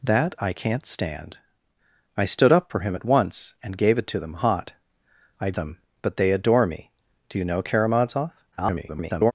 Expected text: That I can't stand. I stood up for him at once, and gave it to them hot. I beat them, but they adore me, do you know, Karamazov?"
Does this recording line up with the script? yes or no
no